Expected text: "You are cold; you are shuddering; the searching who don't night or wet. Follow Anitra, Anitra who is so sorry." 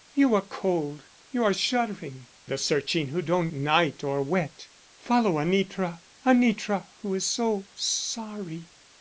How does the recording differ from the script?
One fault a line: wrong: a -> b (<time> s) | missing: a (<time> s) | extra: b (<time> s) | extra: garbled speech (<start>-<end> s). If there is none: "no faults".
no faults